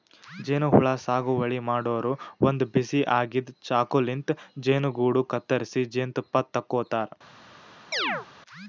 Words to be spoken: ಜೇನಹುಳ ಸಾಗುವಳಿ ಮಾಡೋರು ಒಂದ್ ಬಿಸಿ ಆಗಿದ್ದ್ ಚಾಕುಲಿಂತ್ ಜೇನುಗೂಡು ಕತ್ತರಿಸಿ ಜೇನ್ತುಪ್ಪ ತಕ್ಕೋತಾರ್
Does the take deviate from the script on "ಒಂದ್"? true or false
false